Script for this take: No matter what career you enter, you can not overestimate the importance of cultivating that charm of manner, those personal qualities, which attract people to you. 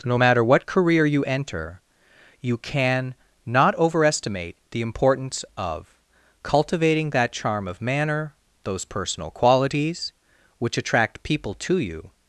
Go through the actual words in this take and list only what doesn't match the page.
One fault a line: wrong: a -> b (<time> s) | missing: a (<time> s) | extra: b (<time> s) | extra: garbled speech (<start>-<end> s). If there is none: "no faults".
no faults